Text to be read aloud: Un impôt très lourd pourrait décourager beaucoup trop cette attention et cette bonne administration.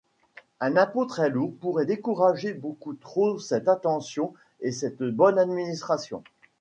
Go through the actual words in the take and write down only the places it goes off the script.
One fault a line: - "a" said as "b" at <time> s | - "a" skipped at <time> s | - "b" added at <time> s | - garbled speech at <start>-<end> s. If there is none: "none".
none